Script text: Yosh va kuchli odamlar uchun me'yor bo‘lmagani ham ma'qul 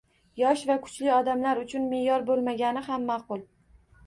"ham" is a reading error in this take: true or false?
false